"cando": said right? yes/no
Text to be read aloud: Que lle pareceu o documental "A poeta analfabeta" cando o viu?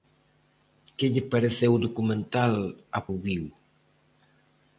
no